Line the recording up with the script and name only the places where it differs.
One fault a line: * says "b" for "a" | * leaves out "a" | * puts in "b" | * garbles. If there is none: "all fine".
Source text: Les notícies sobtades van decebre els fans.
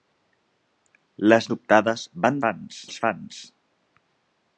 * leaves out "notícies"
* says "fans" for "decebre"